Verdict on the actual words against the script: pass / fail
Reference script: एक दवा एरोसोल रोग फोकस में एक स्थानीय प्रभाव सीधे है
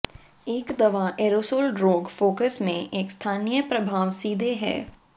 pass